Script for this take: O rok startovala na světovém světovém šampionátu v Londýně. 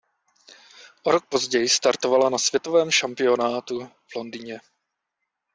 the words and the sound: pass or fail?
fail